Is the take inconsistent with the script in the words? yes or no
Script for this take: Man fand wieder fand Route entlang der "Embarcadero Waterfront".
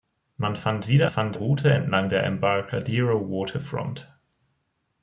no